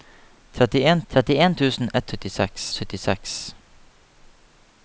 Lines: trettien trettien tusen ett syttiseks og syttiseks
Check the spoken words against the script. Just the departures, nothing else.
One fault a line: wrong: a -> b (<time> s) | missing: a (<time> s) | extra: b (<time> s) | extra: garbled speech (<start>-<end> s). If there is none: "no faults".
no faults